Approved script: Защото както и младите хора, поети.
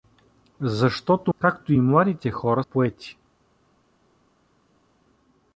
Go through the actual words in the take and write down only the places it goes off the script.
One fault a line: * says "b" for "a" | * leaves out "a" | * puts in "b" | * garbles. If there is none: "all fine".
all fine